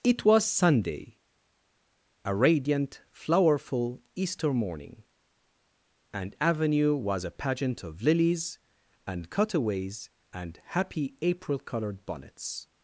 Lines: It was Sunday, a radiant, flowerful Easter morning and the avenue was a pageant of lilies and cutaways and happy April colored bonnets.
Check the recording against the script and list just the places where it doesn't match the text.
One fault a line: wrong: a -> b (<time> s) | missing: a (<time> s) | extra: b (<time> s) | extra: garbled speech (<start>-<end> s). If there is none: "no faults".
missing: the (6.3 s)